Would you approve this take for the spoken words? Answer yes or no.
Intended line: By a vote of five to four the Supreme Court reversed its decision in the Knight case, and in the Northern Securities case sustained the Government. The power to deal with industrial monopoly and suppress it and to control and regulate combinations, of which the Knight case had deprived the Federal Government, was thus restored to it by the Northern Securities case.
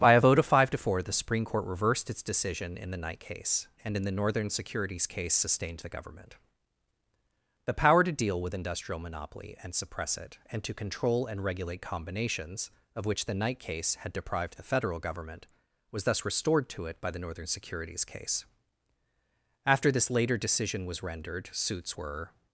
no